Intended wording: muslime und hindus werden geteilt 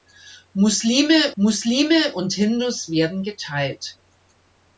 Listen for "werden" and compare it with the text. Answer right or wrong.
right